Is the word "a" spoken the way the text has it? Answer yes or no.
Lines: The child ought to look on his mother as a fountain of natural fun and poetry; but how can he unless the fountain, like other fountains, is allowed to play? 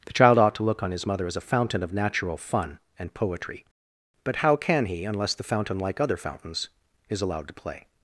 yes